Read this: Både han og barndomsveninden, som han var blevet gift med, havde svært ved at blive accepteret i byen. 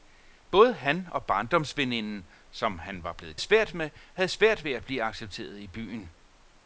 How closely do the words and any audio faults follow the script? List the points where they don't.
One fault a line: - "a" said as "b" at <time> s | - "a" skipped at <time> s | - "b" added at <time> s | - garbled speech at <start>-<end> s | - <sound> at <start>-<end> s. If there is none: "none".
- "gift" said as "svært" at 3.4 s